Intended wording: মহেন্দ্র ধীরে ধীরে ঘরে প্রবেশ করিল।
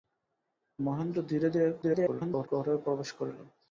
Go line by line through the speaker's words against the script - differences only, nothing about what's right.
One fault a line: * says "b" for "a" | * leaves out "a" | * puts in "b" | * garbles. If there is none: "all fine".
* garbles